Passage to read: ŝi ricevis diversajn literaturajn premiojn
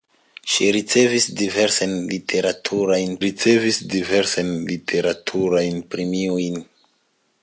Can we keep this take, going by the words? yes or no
no